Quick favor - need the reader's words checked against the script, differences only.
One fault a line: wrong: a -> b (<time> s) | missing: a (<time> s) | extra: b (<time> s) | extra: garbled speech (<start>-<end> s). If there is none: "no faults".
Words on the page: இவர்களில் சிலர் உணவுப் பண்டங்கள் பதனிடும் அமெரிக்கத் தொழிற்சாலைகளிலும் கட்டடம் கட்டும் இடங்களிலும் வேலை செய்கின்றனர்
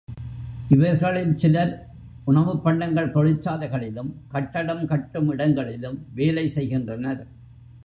missing: பதனிடும் அமெரிக்கத் (3.1 s)